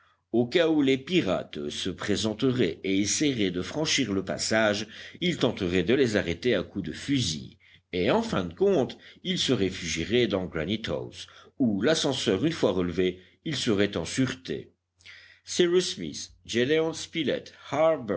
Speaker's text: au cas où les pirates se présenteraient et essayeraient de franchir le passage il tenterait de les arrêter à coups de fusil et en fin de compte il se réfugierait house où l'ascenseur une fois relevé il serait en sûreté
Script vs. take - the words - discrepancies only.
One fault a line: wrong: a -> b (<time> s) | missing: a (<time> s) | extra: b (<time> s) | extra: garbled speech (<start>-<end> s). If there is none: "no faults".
extra: dans granite (10.3 s)